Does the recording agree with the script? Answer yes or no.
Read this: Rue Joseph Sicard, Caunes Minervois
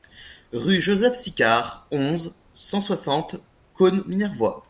no